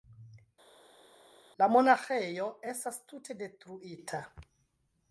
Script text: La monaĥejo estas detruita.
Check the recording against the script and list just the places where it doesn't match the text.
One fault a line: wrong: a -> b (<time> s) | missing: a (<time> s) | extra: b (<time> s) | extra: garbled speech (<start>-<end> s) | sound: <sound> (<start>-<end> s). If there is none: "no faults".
extra: tute (3.1 s)